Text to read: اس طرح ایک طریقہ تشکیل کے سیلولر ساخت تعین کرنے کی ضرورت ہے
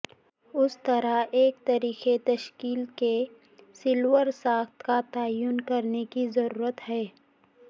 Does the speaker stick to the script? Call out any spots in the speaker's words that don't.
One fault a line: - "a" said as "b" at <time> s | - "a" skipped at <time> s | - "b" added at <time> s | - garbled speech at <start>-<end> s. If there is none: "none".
- "کا" added at 4.8 s